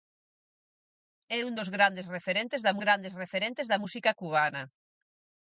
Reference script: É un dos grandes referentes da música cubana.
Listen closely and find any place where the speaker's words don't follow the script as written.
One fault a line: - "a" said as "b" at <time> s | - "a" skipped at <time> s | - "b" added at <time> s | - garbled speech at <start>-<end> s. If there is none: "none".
- "grandes referentes da" added at 2.8 s